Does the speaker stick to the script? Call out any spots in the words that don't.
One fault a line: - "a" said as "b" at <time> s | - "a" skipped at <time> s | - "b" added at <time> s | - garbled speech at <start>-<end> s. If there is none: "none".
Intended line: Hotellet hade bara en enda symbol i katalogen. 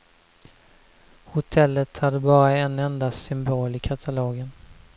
none